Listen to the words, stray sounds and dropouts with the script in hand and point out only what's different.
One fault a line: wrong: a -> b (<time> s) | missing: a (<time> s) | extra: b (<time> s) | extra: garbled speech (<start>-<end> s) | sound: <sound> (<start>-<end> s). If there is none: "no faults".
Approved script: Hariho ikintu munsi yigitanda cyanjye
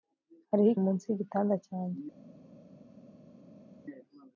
missing: ikintu (0.7 s)